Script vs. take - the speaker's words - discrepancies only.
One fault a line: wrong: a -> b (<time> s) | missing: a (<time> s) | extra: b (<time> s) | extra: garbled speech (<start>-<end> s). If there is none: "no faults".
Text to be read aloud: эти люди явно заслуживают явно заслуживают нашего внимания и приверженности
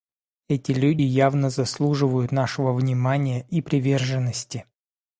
missing: явно заслуживают (2.3 s)